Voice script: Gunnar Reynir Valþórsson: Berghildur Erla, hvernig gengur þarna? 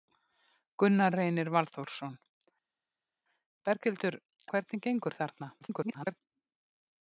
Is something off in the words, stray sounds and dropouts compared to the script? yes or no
yes